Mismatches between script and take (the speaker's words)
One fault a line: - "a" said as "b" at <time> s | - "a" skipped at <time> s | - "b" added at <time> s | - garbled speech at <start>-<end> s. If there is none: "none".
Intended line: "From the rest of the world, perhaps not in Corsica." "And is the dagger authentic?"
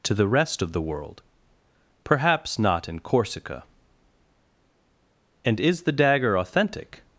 - "From" said as "To" at 0.0 s